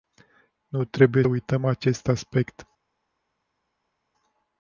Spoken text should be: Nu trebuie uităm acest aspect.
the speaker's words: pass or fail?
pass